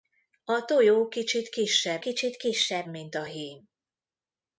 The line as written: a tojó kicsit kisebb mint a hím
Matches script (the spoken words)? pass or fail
fail